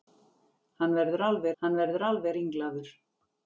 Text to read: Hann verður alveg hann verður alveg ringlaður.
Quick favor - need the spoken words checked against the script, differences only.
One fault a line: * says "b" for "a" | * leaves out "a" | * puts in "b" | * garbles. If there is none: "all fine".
all fine